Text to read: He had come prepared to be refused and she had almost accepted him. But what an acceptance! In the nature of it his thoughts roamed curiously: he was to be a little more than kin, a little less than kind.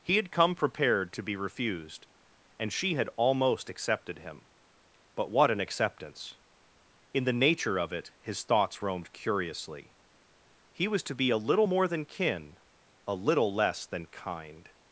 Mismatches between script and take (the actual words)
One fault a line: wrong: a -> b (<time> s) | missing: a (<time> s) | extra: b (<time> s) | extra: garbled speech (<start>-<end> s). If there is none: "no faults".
no faults